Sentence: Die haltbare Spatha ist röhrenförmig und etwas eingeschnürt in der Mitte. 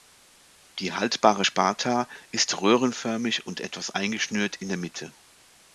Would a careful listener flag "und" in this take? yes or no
no